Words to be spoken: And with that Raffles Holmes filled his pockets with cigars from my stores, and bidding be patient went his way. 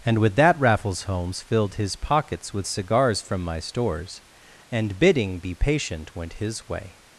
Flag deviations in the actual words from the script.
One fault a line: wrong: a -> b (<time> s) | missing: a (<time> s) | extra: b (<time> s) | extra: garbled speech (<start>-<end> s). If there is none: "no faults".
no faults